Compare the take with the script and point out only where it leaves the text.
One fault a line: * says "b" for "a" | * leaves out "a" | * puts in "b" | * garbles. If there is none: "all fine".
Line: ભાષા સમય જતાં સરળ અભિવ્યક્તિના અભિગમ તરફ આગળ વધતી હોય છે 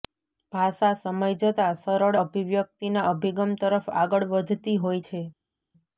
all fine